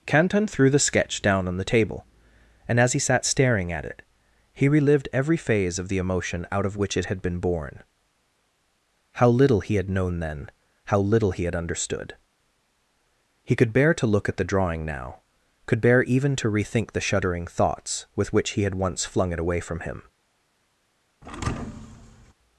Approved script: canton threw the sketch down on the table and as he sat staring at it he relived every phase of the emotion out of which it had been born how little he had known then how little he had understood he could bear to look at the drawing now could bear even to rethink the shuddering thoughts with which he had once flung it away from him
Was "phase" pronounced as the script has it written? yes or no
yes